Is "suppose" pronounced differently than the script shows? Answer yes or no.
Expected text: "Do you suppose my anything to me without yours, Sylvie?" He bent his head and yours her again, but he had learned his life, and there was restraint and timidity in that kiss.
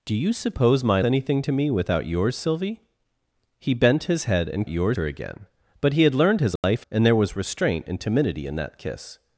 no